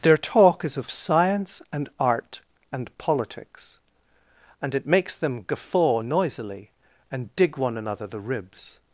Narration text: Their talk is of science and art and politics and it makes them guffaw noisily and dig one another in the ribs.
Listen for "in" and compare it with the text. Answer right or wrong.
wrong